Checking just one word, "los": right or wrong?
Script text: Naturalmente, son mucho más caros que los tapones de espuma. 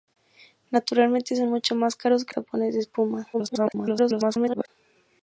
wrong